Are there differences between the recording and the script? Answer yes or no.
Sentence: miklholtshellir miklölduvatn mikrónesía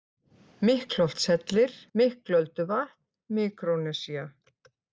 no